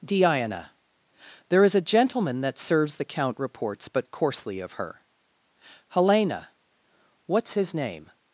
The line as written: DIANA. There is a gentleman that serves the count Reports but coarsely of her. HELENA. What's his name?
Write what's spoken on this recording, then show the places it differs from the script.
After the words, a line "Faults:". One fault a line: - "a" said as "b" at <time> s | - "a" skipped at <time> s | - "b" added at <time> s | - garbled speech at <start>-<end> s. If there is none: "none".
DIANA. There is a gentleman that serves the count Reports but coarsely of her. HELENA. What's his name?
Faults:
none